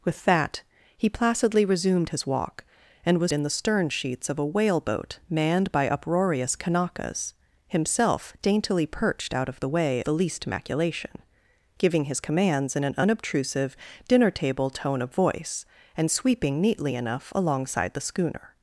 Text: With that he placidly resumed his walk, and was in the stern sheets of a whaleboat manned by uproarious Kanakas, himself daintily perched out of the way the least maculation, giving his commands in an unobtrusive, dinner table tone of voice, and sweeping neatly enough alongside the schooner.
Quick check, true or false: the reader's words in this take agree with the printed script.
true